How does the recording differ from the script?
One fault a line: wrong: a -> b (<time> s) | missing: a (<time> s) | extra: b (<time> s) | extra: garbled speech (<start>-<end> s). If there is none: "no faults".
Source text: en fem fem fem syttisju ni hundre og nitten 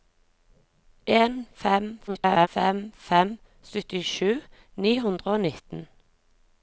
extra: garbled speech (2.1-2.5 s)